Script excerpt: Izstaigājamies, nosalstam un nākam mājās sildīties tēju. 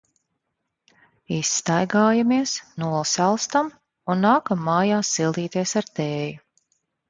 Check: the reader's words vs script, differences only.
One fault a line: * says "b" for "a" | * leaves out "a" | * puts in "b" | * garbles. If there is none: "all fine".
* puts in "ar"